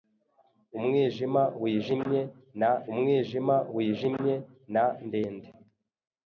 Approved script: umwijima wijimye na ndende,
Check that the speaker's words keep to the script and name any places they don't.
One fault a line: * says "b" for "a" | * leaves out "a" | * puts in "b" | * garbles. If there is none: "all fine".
* puts in "umwijima wijimye na"